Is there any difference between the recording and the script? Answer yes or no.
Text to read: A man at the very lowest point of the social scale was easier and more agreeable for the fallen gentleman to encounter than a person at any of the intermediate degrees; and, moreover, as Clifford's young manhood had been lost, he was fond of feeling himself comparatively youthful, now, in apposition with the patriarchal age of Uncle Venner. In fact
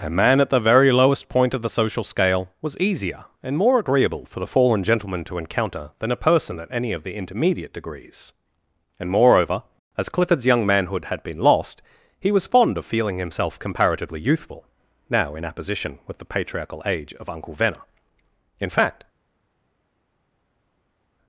no